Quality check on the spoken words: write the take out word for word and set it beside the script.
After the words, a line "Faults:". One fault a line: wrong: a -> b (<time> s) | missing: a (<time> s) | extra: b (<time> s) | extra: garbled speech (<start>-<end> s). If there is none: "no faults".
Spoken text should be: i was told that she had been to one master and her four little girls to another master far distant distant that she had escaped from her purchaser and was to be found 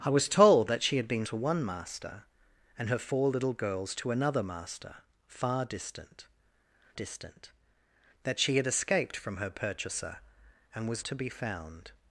i was told that she had been to one master and her four little girls to another master far distant distant that she had escaped from her purchaser and was to be found
Faults:
no faults